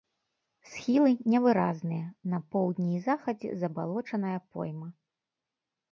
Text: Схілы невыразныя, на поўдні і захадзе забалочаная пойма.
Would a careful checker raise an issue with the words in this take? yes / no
no